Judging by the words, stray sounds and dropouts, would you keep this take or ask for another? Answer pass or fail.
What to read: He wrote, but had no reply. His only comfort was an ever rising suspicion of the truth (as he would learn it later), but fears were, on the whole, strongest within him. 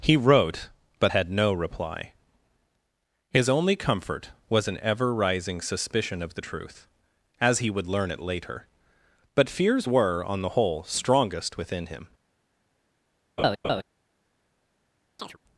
fail